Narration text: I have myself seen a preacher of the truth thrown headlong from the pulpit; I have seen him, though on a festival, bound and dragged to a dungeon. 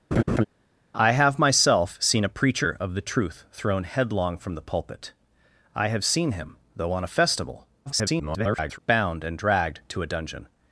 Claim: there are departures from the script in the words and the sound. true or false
true